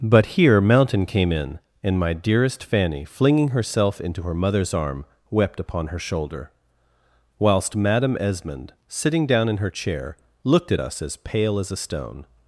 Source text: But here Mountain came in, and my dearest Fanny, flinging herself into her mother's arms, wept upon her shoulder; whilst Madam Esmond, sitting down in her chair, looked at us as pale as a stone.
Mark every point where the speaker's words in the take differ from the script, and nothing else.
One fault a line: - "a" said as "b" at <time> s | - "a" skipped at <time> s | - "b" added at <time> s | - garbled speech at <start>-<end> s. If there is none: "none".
- "arms" said as "arm" at 4.7 s